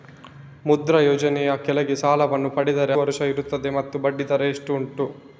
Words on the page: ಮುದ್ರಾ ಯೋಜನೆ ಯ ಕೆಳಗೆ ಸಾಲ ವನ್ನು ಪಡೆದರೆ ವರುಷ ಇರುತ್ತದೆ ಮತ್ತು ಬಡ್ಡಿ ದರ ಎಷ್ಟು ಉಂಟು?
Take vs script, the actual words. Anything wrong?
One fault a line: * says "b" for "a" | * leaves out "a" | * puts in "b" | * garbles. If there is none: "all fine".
all fine